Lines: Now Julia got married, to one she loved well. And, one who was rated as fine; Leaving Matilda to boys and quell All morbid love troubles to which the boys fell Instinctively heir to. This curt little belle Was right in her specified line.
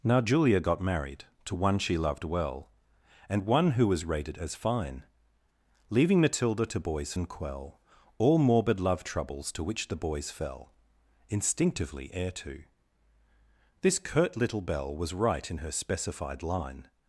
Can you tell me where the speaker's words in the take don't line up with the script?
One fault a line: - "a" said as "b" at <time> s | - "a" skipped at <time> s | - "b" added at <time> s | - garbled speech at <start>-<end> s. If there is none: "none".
none